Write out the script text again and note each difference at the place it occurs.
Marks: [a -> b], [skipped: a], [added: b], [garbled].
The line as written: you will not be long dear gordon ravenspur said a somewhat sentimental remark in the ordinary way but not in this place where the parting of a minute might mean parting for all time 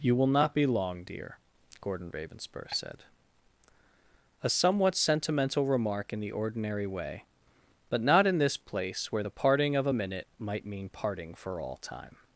you will not be long dear gordon ravenspur said a somewhat sentimental remark in the ordinary way but not in this place where the parting of a minute might mean parting for all time